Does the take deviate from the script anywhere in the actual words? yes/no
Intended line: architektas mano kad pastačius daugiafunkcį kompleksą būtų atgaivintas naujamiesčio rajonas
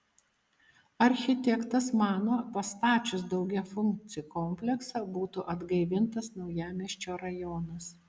yes